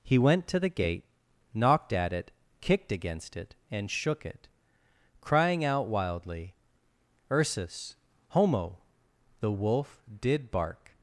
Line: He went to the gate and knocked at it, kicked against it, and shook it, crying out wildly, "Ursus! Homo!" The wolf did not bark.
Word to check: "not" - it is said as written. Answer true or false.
false